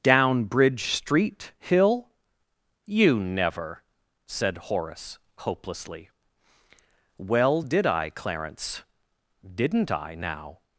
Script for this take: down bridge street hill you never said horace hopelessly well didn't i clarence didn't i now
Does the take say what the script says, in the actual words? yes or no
no